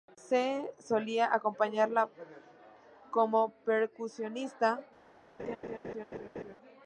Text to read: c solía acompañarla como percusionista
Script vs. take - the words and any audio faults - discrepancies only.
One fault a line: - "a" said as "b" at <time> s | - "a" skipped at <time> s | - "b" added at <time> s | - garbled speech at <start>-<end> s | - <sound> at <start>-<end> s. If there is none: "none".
- laugh at 5.4-6.6 s